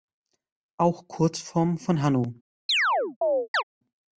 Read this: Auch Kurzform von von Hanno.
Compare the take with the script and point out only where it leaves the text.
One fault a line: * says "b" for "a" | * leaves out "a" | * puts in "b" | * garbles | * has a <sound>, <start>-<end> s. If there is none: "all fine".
* leaves out "von"
* has a chirp, 2.7-3.6 s